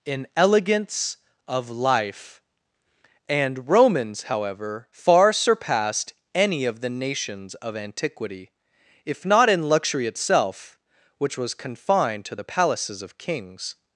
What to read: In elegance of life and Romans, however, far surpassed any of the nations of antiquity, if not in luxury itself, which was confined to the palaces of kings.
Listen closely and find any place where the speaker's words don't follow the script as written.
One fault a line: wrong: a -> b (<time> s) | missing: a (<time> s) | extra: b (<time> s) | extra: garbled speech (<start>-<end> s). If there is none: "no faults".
no faults